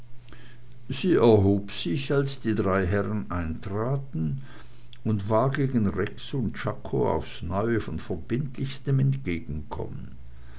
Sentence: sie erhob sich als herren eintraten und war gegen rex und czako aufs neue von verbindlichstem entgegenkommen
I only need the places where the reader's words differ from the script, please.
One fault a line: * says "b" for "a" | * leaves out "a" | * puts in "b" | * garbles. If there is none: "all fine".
* puts in "die drei"